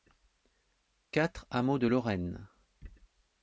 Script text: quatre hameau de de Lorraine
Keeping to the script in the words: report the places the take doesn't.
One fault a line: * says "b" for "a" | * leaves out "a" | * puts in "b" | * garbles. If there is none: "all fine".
* leaves out "de"